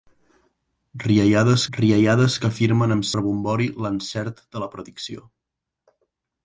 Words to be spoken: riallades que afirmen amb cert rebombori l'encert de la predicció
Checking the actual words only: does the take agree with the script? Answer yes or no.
no